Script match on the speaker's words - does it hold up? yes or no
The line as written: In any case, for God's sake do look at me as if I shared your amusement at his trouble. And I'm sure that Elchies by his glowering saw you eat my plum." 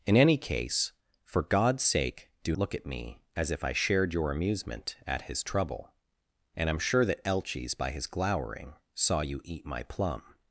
yes